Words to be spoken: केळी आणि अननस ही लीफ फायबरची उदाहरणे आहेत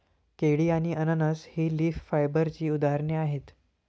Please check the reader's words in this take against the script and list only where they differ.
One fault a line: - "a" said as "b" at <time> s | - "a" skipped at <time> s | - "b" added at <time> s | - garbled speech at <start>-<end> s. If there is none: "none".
none